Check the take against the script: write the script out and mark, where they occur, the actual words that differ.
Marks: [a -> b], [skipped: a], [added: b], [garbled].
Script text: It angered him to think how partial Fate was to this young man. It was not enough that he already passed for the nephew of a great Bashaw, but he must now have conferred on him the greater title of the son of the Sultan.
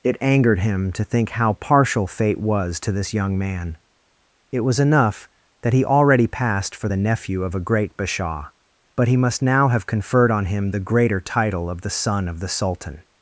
It angered him to think how partial Fate was to this young man. It was [skipped: not] enough that he already passed for the nephew of a great Bashaw, but he must now have conferred on him the greater title of the son of the Sultan.